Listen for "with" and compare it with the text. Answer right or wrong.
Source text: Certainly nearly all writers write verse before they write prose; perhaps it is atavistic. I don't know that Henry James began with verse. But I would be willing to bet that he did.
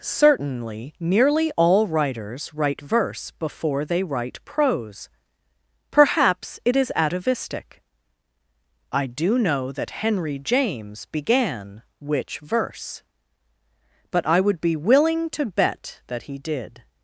wrong